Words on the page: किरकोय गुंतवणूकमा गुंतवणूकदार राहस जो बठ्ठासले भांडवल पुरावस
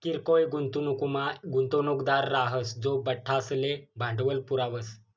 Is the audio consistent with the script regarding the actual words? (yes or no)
yes